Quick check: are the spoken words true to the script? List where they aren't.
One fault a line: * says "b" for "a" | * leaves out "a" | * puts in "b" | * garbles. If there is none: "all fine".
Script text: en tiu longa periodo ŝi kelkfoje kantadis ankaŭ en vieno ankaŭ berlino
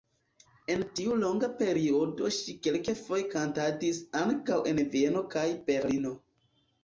* says "kaj" for "ankaŭ"